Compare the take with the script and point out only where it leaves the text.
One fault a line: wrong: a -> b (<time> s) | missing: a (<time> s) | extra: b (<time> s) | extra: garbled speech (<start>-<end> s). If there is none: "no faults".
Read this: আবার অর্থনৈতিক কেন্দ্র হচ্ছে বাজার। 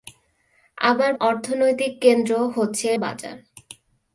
no faults